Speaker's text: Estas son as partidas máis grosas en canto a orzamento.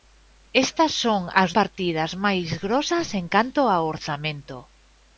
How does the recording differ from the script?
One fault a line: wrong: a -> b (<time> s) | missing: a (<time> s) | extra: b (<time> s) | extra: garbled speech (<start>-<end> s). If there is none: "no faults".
no faults